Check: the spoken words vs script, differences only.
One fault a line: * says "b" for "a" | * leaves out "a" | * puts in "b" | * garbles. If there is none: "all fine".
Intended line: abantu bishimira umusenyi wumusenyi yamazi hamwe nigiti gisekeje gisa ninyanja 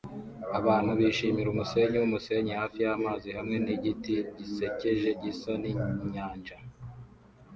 * puts in "hafi"